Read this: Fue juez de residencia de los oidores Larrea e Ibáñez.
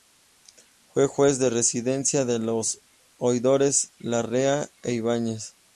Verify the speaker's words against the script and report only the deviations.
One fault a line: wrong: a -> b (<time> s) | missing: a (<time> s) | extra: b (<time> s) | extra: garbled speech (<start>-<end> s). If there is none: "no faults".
no faults